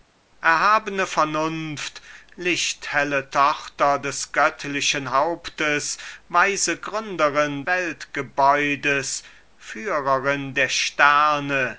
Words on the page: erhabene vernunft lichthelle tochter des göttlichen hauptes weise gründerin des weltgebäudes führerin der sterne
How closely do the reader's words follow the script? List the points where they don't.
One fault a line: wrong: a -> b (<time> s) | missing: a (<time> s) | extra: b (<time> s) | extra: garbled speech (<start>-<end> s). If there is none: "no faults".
missing: des (7.6 s)